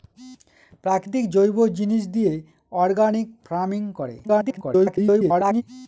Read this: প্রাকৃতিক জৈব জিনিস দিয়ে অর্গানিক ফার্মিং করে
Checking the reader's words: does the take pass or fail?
fail